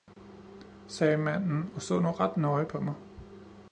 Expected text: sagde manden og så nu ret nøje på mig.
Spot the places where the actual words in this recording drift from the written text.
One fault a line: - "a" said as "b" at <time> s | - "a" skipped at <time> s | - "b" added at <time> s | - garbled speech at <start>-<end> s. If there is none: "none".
none